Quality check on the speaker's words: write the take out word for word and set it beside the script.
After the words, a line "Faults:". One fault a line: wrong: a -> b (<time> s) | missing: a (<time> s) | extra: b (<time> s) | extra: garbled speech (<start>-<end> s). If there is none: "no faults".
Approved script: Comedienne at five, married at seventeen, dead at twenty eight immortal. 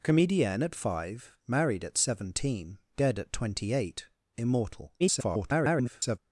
Comedienne at five, married at seventeen, dead at twenty eight immortal. [garbled]
Faults:
extra: garbled speech (5.0-6.2 s)